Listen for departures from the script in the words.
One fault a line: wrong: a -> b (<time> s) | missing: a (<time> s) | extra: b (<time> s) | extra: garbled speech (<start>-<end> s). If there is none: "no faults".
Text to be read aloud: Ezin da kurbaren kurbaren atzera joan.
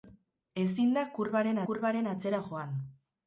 no faults